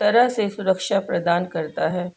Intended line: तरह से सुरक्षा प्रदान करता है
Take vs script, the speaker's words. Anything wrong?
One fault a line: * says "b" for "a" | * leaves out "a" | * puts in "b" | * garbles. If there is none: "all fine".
all fine